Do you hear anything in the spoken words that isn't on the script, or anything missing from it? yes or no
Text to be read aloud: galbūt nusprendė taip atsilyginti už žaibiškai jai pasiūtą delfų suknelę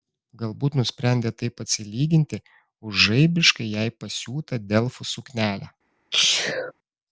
no